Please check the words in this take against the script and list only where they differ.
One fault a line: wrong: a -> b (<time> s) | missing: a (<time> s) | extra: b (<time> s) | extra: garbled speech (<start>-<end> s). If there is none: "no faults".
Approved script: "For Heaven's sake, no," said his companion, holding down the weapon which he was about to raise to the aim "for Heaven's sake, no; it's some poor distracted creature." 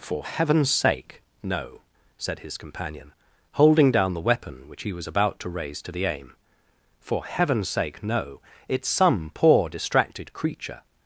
no faults